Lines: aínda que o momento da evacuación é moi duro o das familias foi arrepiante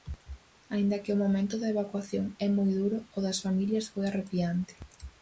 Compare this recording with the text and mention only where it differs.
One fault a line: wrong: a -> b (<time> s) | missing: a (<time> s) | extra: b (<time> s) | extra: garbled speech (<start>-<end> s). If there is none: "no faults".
no faults